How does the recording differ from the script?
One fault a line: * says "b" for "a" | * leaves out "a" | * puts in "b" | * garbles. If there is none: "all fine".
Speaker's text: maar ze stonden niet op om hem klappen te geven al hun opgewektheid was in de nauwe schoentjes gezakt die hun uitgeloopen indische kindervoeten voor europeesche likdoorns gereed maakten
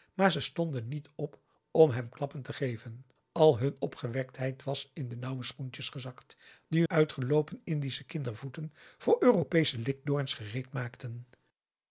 * leaves out "hun"